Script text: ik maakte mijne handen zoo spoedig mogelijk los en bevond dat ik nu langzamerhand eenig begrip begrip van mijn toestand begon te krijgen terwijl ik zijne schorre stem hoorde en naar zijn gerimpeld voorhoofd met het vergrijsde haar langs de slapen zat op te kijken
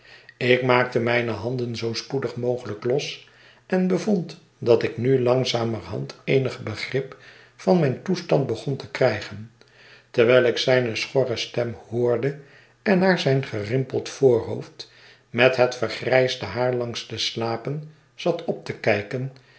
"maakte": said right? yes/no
yes